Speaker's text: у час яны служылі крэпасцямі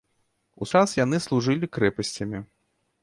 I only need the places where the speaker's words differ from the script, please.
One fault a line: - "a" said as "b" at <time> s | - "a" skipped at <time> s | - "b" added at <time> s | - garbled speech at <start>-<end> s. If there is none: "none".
none